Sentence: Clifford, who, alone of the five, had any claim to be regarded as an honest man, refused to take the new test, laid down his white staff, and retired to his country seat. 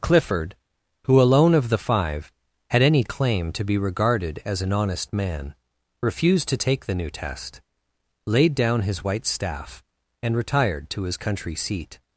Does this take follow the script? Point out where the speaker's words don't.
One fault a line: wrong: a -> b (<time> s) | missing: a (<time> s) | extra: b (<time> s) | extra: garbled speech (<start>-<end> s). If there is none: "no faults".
no faults